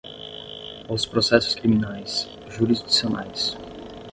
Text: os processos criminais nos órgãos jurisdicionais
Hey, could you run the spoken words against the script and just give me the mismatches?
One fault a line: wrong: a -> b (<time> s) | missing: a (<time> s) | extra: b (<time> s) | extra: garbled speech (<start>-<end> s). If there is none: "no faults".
missing: nos órgãos (2.3 s)